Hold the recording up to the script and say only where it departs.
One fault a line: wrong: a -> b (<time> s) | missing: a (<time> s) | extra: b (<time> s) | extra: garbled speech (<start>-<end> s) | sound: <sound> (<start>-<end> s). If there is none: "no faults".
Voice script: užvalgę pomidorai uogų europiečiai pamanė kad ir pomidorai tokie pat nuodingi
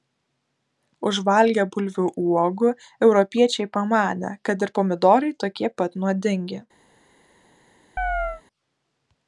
wrong: pomidorai -> bulvių (1.8 s)
sound: chirp (8.0-8.4 s)